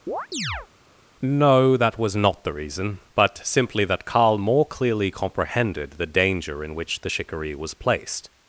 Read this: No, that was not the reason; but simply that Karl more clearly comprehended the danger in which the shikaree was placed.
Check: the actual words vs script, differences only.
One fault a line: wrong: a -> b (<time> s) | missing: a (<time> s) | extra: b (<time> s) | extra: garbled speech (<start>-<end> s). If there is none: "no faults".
no faults